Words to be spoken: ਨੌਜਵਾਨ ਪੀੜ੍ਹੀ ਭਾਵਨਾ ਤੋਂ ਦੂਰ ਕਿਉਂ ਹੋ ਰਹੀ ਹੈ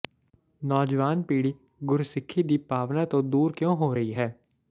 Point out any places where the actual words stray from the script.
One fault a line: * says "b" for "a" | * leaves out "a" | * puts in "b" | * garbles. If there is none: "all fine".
* puts in "ਗੁਰਸਿੱਖੀ ਦੀ"